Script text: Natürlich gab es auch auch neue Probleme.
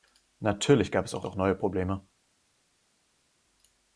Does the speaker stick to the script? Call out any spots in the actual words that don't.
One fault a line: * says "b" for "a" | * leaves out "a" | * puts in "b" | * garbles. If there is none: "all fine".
all fine